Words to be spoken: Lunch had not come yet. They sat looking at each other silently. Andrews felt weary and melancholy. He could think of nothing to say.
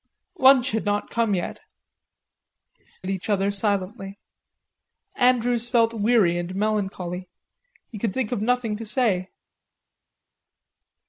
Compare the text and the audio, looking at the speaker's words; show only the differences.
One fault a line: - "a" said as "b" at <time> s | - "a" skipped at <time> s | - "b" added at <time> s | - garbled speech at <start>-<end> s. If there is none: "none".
- "They sat looking" skipped at 1.6 s